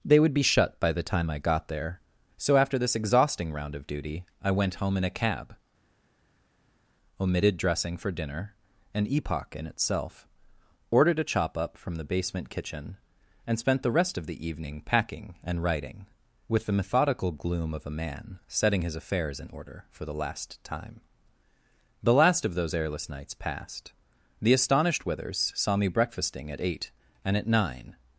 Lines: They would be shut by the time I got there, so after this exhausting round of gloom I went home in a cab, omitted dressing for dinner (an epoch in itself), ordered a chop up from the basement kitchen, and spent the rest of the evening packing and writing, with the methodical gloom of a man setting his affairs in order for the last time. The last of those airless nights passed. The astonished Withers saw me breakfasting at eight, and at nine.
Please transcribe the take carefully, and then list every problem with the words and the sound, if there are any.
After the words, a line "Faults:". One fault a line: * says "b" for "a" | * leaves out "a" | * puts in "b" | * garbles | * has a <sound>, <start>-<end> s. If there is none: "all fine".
They would be shut by the time I got there, so after this exhausting round of duty I went home in a cab, omitted dressing for dinner (an epoch in itself), ordered a chop up from the basement kitchen, and spent the rest of the evening packing and writing, with the methodical gloom of a man setting his affairs in order for the last time. The last of those airless nights passed. The astonished Withers saw me breakfasting at eight, and at nine.
Faults:
* says "duty" for "gloom"